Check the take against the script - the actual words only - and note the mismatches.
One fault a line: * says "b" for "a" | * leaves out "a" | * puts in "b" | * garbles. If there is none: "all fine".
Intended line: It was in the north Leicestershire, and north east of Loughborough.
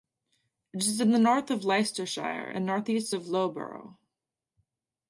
* says "is" for "was"
* puts in "of"